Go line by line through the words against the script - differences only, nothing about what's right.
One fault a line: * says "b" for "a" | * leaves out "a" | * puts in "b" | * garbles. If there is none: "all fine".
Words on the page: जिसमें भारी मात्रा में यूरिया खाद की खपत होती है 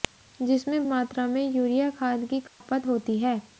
* leaves out "भारी"